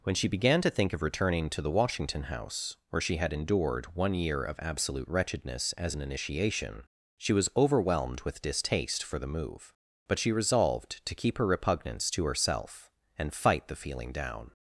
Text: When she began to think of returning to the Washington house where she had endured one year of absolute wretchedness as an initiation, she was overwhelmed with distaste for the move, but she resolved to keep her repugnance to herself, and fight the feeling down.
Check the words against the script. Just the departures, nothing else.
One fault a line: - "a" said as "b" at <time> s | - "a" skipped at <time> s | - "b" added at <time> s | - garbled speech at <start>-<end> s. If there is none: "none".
none